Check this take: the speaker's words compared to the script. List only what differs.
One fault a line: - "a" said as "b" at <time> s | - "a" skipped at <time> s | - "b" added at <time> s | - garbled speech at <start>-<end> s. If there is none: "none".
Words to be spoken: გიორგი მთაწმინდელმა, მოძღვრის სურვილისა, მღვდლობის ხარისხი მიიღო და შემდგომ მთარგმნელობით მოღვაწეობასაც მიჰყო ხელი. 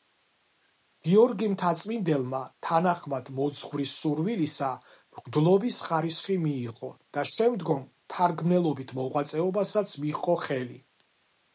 - "თანახმად" added at 2.7 s